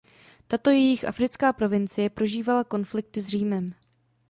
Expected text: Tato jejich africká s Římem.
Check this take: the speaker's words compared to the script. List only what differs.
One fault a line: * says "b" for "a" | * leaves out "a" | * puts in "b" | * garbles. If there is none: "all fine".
* puts in "provincie prožívala konflikty"